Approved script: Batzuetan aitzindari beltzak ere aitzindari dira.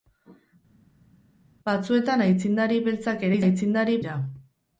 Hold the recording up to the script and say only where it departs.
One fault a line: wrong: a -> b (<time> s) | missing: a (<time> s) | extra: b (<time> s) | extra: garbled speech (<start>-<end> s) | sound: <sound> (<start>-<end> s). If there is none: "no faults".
no faults